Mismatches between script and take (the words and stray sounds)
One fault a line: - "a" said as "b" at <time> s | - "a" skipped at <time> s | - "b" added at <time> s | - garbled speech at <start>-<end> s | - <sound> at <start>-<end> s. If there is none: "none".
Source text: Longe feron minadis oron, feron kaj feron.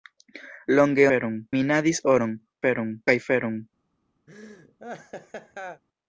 - laugh at 4.3-5.8 s